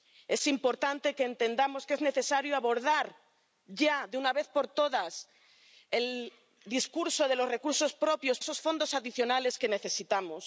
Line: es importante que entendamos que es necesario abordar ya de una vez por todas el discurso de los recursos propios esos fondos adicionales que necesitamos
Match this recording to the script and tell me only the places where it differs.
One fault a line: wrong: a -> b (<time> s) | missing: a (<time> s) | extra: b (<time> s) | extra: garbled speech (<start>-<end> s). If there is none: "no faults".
no faults